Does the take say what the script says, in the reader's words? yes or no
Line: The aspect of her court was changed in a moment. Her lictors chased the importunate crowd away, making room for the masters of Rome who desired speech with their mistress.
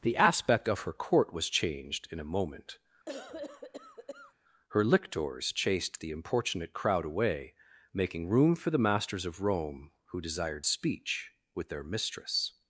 yes